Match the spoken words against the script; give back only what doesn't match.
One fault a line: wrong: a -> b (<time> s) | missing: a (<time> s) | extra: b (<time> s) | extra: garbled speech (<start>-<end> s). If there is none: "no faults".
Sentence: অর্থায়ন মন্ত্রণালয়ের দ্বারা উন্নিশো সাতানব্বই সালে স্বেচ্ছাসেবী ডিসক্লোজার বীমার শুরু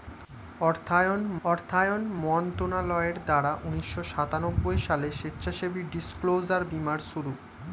extra: অর্থায়ন (1.4 s)